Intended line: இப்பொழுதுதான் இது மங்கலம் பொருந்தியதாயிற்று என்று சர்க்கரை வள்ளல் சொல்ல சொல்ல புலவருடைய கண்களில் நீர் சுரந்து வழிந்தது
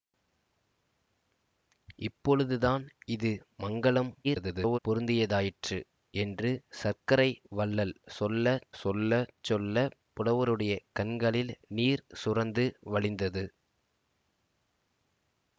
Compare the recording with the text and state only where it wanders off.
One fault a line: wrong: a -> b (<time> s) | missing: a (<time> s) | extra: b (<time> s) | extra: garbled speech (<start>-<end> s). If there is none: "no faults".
extra: garbled speech (4.2-4.8 s)
extra: சொல்ல (9.4 s)